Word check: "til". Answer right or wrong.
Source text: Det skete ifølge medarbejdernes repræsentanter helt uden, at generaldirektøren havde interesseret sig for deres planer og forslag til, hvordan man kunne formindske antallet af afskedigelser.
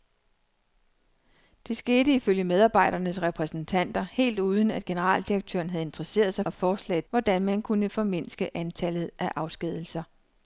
wrong